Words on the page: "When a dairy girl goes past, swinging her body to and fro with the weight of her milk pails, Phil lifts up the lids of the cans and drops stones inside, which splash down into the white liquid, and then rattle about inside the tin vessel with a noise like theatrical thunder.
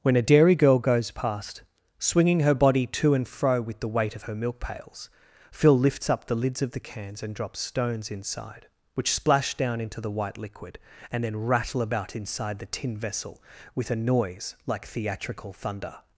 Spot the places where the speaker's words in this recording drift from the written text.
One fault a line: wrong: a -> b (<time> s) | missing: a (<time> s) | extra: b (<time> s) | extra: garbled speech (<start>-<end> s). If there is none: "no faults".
no faults